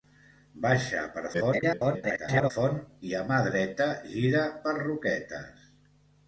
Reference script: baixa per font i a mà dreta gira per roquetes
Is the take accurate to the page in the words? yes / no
no